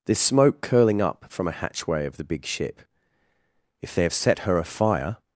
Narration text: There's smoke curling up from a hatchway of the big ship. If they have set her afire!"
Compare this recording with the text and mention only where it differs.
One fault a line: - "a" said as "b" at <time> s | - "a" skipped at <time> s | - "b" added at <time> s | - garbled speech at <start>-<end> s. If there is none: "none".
none